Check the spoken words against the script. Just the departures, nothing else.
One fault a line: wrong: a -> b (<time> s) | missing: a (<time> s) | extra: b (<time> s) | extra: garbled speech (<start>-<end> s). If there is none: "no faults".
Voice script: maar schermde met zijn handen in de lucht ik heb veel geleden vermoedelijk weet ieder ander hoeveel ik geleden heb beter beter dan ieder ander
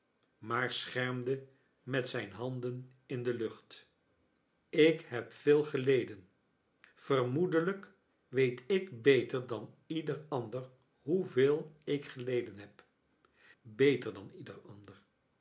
extra: ik beter dan (8.7 s)
missing: beter (14.1 s)